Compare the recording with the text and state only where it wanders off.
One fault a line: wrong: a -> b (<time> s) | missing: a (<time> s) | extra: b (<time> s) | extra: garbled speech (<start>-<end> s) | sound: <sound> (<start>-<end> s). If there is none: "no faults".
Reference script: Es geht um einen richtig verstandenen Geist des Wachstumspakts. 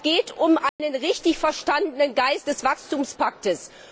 sound: dropout (0.7-0.8 s)